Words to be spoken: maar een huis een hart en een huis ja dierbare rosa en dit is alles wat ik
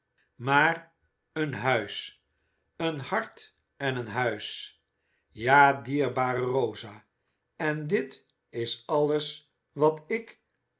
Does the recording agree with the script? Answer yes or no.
yes